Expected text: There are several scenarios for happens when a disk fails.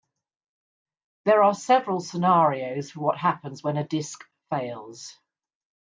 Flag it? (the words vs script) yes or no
yes